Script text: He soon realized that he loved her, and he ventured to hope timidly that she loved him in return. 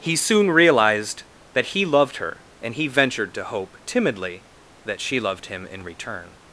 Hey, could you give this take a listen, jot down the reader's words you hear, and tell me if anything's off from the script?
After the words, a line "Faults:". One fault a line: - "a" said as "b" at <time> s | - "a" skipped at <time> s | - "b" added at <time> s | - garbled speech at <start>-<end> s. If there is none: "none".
He soon realized that he loved her, and he ventured to hope timidly that she loved him in return.
Faults:
none